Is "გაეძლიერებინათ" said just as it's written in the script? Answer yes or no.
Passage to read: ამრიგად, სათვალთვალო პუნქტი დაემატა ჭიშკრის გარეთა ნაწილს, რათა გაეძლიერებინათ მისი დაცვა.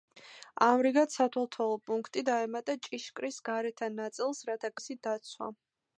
no